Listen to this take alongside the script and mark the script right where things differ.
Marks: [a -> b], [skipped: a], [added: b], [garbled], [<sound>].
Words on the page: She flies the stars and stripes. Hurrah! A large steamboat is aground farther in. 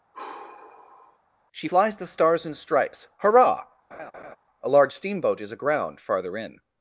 [sigh] She flies the stars and stripes. Hurrah! [laugh] A large steamboat is aground farther in.